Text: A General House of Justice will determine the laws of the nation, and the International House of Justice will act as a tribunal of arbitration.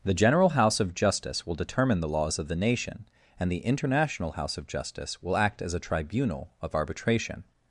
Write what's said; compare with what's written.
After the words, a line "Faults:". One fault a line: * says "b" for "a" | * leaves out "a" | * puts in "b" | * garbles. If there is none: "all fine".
The General House of Justice will determine the laws of the nation, and the International House of Justice will act as a tribunal of arbitration.
Faults:
* says "The" for "A"